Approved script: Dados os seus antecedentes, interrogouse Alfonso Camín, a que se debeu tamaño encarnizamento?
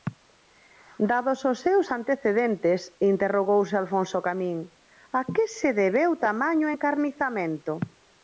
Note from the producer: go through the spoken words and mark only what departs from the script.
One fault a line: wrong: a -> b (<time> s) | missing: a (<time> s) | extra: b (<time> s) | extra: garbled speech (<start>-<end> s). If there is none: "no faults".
no faults